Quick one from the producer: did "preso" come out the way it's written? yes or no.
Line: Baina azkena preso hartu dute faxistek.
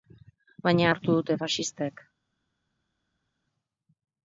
no